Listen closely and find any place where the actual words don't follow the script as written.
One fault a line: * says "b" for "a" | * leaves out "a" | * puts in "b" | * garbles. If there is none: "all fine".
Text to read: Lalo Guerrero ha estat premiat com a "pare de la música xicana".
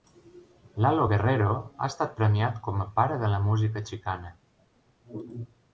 all fine